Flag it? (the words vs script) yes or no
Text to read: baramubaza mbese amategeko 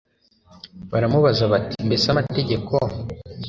yes